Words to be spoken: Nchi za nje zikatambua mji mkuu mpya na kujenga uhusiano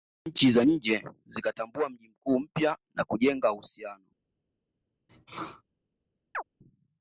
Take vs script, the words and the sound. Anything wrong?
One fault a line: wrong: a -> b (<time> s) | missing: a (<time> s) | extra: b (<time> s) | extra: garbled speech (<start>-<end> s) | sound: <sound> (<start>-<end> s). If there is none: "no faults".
sound: sneeze (5.1-5.6 s)
sound: chirp (6.3-6.4 s)